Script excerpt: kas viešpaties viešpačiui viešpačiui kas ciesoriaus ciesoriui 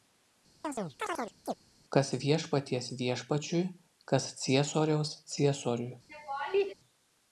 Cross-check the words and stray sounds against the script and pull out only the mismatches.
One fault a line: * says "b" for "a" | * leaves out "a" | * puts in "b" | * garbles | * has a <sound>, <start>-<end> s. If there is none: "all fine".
* has a chirp, 0.6-1.5 s
* leaves out "viešpačiui"
* has a laugh, 6.1-6.7 s